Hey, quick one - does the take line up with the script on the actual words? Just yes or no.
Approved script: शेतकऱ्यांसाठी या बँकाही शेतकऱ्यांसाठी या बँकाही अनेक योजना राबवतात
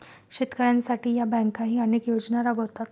no